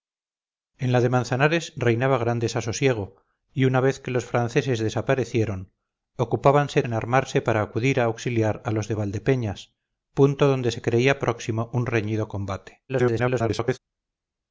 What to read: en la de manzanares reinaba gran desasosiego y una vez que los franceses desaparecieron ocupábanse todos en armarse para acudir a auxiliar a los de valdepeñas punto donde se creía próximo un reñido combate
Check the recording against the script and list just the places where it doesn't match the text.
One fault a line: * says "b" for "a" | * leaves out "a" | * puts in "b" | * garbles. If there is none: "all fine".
* leaves out "todos"
* garbles